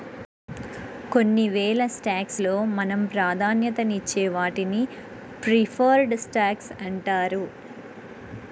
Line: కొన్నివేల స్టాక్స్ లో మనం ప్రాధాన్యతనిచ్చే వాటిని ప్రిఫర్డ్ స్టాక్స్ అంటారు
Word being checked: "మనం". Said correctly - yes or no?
yes